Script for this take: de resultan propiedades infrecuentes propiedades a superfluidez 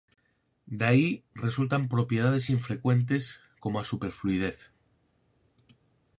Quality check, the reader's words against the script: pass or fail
fail